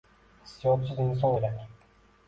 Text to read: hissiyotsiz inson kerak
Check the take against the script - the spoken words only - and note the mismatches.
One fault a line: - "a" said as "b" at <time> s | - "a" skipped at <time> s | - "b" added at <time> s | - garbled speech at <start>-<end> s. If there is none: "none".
none